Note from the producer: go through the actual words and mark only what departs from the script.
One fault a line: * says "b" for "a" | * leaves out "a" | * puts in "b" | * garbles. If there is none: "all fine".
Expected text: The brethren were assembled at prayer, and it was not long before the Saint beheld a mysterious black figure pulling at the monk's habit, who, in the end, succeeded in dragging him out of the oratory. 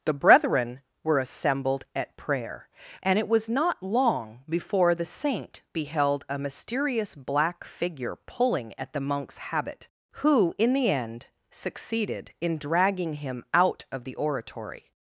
all fine